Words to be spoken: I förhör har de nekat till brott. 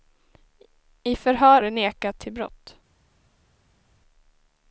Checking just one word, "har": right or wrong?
wrong